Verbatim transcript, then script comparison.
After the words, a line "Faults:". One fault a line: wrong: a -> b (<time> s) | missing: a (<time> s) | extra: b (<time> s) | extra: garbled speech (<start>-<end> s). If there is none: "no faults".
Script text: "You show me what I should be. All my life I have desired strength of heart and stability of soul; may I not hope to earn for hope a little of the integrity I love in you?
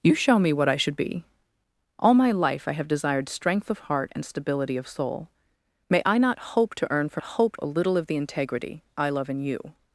"You show me what I should be. All my life I have desired strength of heart and stability of soul; may I not hope to earn for hope a little of the integrity I love in you?
Faults:
no faults